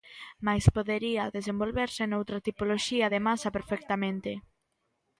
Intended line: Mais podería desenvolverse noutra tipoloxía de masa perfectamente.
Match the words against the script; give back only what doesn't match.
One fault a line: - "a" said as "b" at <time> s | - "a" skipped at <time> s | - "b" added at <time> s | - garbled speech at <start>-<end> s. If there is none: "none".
none